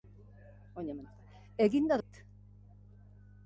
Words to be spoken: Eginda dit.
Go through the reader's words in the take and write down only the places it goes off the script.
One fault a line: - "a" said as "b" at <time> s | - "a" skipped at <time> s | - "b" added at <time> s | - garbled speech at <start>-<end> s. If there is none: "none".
none